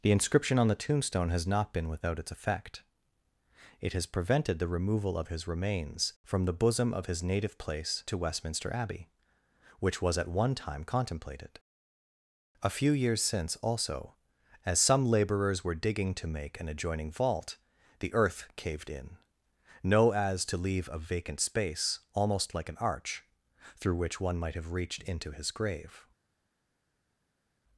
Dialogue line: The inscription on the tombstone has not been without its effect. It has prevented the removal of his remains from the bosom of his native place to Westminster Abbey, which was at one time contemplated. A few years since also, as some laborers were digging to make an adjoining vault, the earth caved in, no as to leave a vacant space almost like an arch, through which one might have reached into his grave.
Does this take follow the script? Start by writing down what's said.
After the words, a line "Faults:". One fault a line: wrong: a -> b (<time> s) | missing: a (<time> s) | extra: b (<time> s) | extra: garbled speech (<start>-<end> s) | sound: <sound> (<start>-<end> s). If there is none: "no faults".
The inscription on the tombstone has not been without its effect. It has prevented the removal of his remains from the bosom of his native place to Westminster Abbey, which was at one time contemplated. A few years since also, as some laborers were digging to make an adjoining vault, the earth caved in, no as to leave a vacant space almost like an arch, through which one might have reached into his grave.
Faults:
no faults